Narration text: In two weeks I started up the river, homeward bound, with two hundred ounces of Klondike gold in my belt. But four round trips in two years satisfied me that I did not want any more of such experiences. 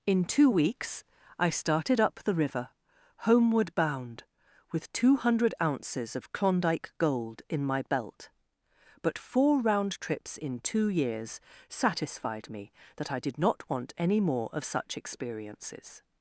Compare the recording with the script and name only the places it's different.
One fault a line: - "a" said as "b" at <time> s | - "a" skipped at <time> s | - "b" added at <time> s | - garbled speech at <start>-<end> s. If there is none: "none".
none